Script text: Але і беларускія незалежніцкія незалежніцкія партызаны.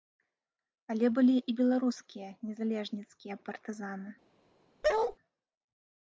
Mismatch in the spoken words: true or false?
true